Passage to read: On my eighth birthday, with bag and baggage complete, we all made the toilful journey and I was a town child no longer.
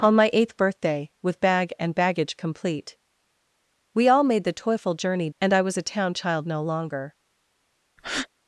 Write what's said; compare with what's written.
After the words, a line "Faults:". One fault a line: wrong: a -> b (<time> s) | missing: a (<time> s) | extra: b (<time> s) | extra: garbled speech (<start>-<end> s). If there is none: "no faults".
On my eighth birthday, with bag and baggage complete, we all made the toilful journey and I was a town child no longer.
Faults:
no faults